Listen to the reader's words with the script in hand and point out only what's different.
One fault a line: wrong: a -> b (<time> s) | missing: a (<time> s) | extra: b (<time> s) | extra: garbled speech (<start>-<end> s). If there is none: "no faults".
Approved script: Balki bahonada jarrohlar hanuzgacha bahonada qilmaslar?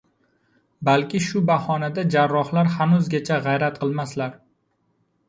extra: shu (1.2 s)
wrong: bahonada -> g‘ayrat (3.5 s)